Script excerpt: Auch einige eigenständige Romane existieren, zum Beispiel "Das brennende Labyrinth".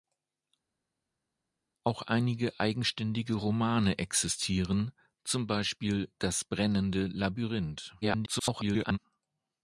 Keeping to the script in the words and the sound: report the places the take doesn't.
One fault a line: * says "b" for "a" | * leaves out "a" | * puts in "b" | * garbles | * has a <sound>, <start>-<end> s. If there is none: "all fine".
* garbles